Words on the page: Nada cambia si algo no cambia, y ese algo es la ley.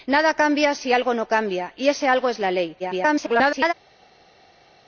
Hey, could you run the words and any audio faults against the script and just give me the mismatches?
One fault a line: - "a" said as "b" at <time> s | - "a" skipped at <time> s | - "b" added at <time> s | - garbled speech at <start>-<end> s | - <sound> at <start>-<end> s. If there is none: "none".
- garbled speech at 2.8-3.7 s